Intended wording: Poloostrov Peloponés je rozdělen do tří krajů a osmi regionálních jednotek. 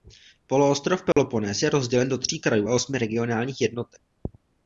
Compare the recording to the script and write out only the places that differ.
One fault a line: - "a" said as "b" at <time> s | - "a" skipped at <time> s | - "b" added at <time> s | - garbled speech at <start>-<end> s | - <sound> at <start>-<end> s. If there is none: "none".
- dropout at 1.1-1.2 s